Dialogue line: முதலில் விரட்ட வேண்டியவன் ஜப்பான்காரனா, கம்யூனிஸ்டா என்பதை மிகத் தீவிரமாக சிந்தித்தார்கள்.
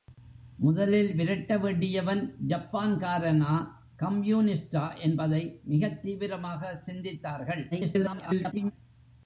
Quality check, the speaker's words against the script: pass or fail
fail